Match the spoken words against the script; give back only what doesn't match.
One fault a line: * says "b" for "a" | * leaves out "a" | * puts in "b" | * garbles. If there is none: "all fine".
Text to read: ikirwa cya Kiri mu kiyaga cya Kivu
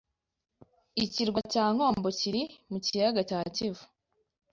* puts in "Nkombo"